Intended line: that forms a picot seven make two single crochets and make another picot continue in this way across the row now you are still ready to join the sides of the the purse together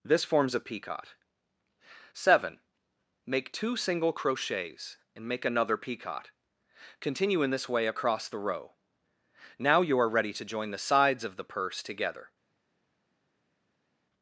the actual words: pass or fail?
fail